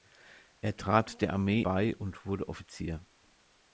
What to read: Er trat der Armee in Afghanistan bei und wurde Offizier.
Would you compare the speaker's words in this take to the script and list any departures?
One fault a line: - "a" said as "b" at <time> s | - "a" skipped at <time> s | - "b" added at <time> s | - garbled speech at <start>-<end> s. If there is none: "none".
- "in Afghanistan" skipped at 1.6 s